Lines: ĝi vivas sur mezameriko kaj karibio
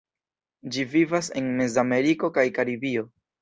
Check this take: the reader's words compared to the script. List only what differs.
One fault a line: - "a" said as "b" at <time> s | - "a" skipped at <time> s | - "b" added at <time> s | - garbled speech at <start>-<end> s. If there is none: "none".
- "sur" said as "en" at 1.4 s